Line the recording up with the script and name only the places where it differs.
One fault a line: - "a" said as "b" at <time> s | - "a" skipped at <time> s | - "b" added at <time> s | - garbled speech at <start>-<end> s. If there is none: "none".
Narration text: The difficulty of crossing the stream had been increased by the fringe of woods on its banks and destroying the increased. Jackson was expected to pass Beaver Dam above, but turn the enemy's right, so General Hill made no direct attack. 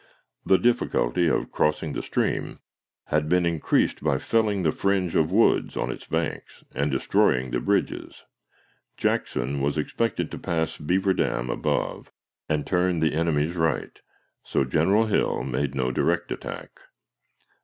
- "felling" added at 4.2 s
- "increased" said as "bridges" at 7.6 s
- "but" said as "and" at 12.5 s